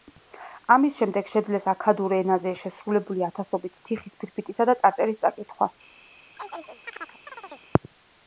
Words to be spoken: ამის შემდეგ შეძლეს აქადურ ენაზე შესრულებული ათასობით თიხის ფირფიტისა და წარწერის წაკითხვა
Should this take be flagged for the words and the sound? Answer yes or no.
yes